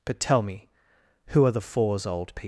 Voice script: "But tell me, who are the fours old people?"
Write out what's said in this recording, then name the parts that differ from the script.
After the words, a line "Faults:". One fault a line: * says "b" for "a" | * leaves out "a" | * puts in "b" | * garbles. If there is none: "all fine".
"But tell me, who are the fours old people?"
Faults:
all fine